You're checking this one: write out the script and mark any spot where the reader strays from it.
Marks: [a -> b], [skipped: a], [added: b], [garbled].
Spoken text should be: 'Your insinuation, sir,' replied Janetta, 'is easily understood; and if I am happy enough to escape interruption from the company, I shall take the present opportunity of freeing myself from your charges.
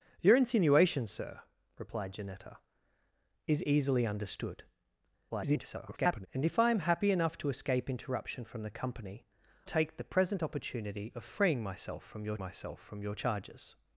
'Your insinuation, sir,' replied Janetta, 'is easily understood; [garbled] and if I am happy enough to escape interruption from the company, [skipped: I shall] take the present opportunity of freeing myself from your [added: myself from your] charges.